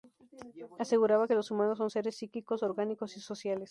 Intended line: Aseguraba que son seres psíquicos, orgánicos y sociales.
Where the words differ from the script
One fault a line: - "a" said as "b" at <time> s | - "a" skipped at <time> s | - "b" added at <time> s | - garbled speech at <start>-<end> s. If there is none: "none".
- "los humanos" added at 1.3 s